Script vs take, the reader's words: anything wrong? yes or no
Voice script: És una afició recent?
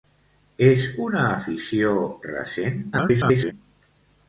yes